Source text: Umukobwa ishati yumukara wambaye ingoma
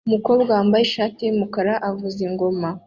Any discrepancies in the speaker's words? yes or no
yes